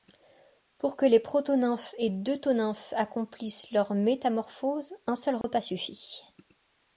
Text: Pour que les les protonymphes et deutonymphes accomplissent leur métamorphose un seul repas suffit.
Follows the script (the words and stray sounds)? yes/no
no